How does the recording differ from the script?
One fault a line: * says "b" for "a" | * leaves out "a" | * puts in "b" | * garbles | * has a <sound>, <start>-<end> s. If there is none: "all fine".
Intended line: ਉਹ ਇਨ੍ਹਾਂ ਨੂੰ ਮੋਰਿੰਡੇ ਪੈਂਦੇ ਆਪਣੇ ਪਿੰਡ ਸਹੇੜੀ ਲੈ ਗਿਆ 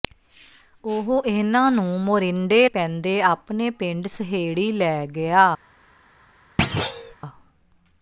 * has a thud, 6.6-7.1 s